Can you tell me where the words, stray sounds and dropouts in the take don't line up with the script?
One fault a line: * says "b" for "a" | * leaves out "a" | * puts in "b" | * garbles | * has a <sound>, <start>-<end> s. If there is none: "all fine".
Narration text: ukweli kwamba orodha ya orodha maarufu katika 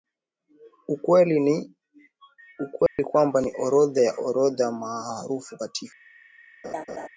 * has a dropout, 2.9-3.0 s
* puts in "ni"
* has a laugh, 6.6-7.1 s